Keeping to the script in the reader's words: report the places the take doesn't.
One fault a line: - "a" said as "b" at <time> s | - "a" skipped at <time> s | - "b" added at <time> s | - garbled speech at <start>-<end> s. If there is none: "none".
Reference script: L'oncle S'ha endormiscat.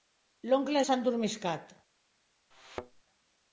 none